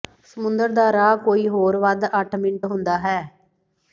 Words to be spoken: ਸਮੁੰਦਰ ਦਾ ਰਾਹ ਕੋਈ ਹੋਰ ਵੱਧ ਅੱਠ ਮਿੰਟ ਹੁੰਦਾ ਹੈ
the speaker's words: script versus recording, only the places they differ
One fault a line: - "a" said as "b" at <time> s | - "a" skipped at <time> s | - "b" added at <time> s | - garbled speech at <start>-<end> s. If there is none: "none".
none